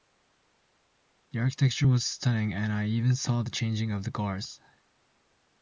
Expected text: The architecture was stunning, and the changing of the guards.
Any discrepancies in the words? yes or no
yes